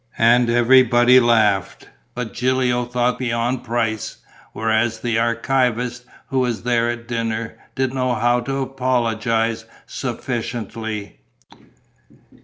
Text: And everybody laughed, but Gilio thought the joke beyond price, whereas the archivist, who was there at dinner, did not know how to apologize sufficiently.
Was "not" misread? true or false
true